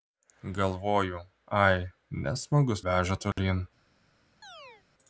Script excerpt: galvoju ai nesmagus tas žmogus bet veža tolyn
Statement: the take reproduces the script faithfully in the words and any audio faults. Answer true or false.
false